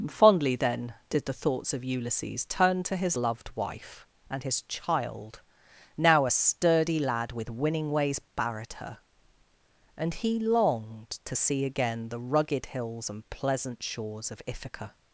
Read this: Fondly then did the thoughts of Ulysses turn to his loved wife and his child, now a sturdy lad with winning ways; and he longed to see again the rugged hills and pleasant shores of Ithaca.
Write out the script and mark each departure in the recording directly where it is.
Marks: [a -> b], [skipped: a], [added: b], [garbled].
Fondly then did the thoughts of Ulysses turn to his loved wife and his child, now a sturdy lad with winning ways; [added: barred her] and he longed to see again the rugged hills and pleasant shores of Ithaca.